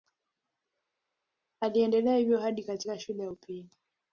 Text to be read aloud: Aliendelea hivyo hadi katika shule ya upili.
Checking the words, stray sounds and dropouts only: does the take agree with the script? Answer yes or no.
yes